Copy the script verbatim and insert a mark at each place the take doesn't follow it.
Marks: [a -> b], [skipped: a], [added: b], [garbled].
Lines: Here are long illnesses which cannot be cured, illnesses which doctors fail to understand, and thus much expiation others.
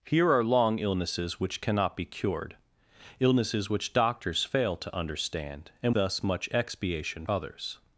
Here are long illnesses which cannot be cured, illnesses which doctors fail to understand, and thus much expiation others.